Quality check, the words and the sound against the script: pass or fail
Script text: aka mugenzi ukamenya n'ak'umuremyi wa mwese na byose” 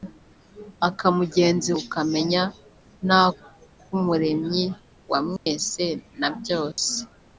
fail